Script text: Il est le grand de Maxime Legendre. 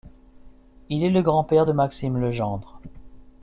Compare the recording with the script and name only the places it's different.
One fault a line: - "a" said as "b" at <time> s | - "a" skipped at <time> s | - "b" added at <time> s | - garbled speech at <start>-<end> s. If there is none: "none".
- "père" added at 1.4 s